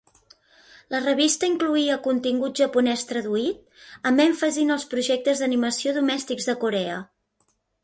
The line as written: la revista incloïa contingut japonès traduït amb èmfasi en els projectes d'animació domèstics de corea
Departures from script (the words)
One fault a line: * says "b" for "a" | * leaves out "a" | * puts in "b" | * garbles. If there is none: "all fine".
all fine